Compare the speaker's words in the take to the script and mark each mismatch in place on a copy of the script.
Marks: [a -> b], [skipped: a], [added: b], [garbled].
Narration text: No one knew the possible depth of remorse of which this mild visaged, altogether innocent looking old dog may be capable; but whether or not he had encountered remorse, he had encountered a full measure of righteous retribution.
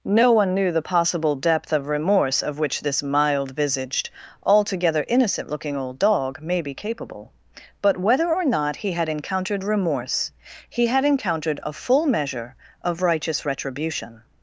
No one knew the possible depth of remorse of which this mild visaged, altogether innocent looking old dog may be capable; but whether or not he had encountered remorse, he had encountered a full measure of righteous retribution.